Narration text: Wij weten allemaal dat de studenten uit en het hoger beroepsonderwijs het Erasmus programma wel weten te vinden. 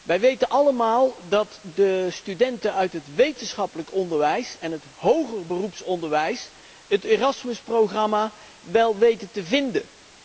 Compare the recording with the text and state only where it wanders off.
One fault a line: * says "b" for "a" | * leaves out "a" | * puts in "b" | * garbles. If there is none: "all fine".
* puts in "het wetenschappelijk onderwijs"